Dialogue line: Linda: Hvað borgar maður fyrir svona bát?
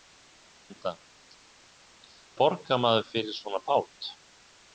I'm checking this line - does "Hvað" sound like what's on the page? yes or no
no